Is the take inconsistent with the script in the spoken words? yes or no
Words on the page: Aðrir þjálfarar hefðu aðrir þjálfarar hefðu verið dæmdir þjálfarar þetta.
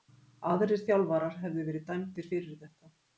yes